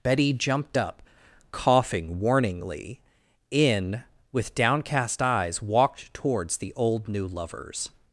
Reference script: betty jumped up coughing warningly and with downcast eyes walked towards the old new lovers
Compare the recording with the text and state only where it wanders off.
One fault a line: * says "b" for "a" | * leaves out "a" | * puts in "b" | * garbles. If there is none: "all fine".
* says "in" for "and"